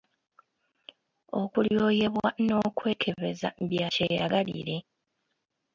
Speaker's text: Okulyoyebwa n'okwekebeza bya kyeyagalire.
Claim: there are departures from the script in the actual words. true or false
false